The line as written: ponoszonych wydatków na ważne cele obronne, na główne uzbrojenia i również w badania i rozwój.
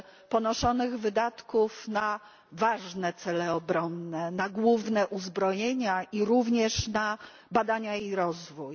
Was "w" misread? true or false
true